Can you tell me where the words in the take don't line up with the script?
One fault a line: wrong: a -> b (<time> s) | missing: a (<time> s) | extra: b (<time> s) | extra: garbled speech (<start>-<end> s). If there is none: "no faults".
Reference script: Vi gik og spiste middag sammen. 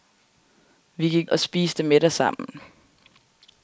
no faults